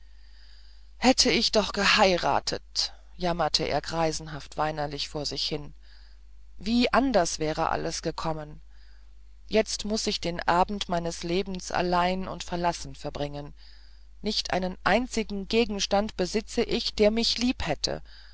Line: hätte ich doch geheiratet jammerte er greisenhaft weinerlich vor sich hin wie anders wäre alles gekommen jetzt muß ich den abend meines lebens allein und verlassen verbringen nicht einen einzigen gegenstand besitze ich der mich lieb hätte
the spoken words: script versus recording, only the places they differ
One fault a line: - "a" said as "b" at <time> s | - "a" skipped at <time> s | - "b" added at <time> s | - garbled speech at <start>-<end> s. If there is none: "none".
none